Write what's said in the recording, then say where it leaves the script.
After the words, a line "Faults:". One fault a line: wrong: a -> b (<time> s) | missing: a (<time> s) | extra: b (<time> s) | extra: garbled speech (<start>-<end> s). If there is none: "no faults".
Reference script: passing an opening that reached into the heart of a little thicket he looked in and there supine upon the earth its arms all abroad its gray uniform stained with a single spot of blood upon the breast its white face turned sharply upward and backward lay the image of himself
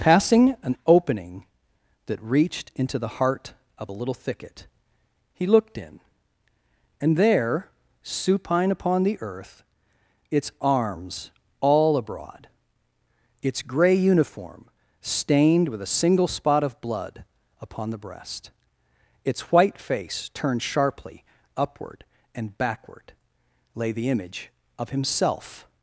passing an opening that reached into the heart of a little thicket he looked in and there supine upon the earth its arms all abroad its gray uniform stained with a single spot of blood upon the breast its white face turned sharply upward and backward lay the image of himself
Faults:
no faults